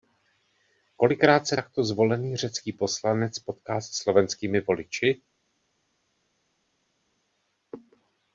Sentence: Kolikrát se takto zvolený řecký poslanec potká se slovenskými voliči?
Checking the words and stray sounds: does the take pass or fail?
pass